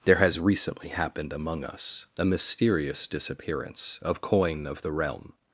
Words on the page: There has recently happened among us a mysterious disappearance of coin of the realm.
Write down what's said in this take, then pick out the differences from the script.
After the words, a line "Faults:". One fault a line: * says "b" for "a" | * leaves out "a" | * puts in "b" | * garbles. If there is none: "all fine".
There has recently happened among us a mysterious disappearance of coin of the realm.
Faults:
all fine